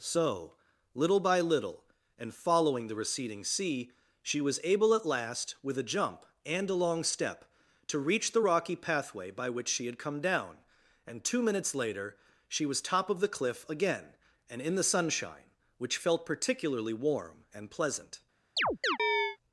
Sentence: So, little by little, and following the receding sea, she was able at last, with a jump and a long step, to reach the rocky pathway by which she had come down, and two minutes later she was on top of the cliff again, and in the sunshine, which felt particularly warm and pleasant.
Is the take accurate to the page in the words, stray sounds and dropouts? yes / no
no